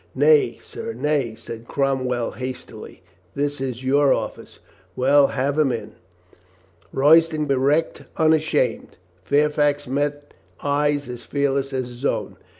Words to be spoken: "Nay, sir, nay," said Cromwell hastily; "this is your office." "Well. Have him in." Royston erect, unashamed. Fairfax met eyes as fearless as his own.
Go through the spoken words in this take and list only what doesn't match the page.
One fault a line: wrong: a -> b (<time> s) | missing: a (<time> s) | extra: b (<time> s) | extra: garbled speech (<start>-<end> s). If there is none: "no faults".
no faults